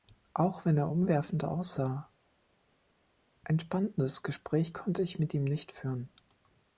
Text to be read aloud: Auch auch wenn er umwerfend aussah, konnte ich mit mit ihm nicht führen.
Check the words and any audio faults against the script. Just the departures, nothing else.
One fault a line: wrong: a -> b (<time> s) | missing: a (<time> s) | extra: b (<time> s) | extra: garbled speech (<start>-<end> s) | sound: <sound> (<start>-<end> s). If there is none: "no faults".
missing: auch (0.7 s)
extra: ein spannendes Gespräch (3.4 s)
missing: mit (5.3 s)